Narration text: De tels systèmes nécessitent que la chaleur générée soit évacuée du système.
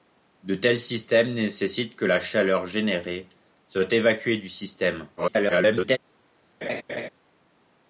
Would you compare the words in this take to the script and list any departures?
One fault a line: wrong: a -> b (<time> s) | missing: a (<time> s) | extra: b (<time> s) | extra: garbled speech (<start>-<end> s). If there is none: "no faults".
extra: garbled speech (5.2-6.0 s)